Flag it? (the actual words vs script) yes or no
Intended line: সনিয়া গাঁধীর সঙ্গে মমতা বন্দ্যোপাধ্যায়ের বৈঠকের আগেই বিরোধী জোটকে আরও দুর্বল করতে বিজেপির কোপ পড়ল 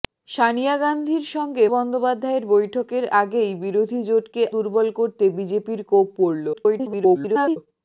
yes